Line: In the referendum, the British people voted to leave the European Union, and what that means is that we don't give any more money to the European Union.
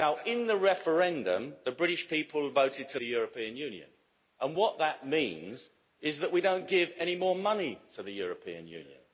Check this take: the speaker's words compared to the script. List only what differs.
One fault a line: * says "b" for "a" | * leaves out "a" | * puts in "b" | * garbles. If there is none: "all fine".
* leaves out "leave"